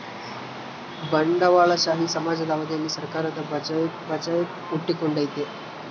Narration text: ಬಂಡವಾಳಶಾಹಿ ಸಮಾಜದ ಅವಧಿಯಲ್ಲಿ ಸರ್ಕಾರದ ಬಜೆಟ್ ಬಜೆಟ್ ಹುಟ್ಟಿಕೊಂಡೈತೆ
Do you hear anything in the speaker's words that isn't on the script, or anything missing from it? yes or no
no